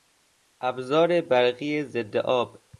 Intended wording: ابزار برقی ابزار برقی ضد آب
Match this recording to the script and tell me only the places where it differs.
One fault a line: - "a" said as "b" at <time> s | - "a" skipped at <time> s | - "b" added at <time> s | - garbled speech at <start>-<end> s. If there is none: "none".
- "ابزار برقی" skipped at 1.8 s